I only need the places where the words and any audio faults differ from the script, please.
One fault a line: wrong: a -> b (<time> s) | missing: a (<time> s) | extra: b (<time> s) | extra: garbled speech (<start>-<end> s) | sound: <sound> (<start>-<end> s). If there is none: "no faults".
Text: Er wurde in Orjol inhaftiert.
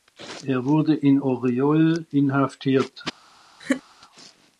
sound: laugh (3.6-3.8 s)